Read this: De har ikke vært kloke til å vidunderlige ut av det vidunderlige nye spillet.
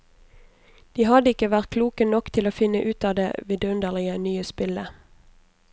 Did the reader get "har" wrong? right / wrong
wrong